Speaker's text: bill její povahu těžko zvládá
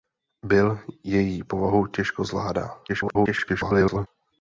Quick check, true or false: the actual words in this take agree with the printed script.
false